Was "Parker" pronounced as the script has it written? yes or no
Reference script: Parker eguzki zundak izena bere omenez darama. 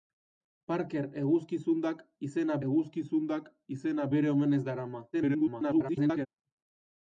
yes